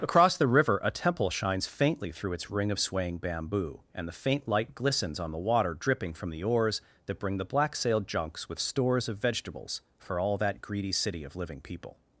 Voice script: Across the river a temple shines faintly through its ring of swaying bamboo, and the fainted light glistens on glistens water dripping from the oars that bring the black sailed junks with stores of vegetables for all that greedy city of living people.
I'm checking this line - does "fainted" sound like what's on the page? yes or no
no